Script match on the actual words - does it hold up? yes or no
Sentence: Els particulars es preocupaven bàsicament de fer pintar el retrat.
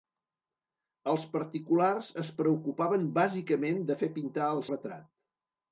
yes